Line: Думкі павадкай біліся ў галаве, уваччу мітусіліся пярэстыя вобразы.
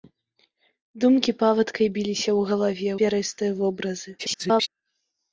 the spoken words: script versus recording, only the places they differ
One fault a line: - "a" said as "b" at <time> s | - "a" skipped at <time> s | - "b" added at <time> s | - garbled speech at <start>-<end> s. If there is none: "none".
- "уваччу мітусіліся" skipped at 2.9 s
- garbled speech at 4.2-4.7 s